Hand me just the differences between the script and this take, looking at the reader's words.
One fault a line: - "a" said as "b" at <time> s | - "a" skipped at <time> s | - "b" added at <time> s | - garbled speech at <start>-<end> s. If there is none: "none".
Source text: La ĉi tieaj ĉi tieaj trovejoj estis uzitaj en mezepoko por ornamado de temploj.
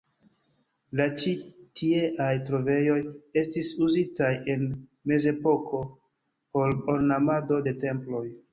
- "ĉi tieaj" skipped at 2.3 s